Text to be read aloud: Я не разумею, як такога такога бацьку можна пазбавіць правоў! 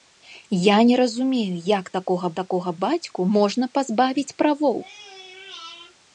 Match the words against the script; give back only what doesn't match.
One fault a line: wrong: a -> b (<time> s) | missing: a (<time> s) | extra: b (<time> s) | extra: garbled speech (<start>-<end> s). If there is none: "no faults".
no faults